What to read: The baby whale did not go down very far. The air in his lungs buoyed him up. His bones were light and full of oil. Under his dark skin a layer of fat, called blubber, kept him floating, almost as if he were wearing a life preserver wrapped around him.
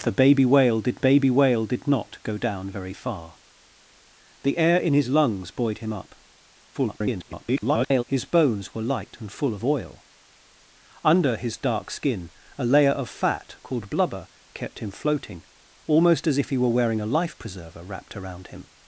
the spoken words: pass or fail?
fail